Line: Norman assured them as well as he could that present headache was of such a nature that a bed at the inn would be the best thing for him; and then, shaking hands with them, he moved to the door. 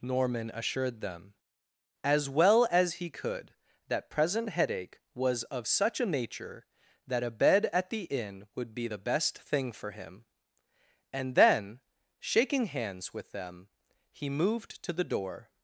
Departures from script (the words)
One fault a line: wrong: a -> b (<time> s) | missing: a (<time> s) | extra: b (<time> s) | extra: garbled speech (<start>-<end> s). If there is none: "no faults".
no faults